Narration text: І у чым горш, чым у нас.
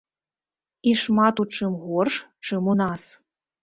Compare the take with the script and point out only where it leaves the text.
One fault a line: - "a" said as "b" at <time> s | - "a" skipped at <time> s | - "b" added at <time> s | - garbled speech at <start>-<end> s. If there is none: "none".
- "шмат" added at 1.0 s